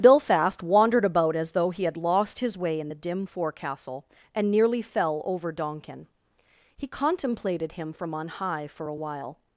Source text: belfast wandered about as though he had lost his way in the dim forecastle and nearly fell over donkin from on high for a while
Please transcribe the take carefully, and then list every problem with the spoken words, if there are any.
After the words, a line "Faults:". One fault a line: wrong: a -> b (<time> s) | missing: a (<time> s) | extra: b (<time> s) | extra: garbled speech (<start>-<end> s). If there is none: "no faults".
belfast wandered about as though he had lost his way in the dim forecastle and nearly fell over donkin he contemplated him from on high for a while
Faults:
extra: he contemplated him (6.8 s)